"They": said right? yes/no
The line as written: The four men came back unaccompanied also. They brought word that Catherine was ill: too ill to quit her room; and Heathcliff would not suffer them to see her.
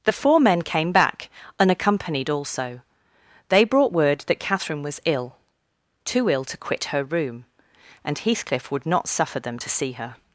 yes